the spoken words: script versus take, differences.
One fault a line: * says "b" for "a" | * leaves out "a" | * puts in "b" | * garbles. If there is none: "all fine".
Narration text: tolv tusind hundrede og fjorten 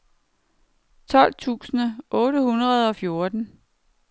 * puts in "otte"